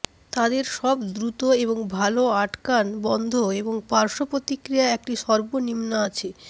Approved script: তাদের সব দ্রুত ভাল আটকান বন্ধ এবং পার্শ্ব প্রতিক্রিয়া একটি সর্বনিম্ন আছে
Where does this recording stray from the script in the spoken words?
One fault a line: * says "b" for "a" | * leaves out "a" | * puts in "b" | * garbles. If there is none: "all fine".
* puts in "এবং"